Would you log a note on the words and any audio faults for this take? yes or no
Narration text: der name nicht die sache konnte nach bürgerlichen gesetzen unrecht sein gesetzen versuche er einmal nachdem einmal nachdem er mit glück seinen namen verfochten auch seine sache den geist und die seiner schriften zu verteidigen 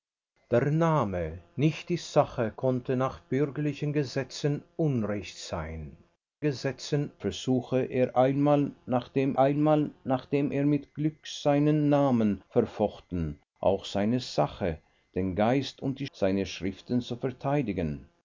no